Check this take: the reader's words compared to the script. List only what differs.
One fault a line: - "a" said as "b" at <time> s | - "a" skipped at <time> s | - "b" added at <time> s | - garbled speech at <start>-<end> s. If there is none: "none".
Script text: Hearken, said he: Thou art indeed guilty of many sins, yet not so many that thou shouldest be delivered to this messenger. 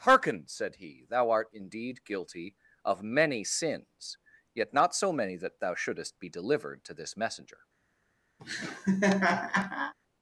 none